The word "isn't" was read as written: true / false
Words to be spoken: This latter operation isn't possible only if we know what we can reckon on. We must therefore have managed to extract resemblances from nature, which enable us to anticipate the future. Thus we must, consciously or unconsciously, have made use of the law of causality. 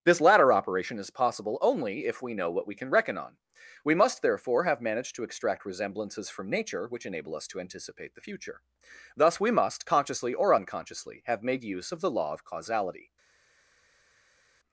false